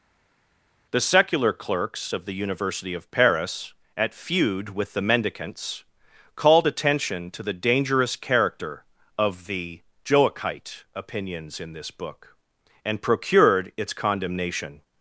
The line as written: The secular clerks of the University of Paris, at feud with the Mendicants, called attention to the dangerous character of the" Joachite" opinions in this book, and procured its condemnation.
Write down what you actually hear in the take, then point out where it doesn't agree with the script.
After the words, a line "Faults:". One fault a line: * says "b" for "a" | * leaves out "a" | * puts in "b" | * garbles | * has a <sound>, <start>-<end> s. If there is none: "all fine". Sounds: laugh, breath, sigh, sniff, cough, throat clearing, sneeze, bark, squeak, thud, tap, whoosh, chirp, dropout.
The secular clerks of the University of Paris, at feud with the Mendicants, called attention to the dangerous character of the" Joachite" opinions in this book, and procured its condemnation.
Faults:
all fine